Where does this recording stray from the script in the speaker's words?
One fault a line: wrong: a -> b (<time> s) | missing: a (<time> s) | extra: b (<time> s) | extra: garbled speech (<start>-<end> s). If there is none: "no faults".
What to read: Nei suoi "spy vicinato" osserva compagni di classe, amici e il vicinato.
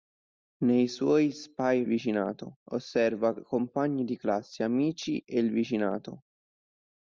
no faults